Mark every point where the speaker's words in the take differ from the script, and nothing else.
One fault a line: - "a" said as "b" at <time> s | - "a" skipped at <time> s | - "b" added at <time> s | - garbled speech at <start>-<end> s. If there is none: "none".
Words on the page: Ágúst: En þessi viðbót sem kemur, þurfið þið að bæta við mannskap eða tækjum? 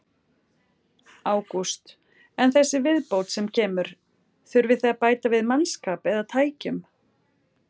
none